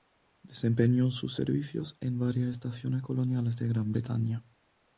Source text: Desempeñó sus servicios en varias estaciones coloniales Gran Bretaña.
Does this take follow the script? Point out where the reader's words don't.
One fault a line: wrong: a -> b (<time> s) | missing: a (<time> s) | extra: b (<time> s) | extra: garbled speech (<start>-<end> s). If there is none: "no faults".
extra: de (3.6 s)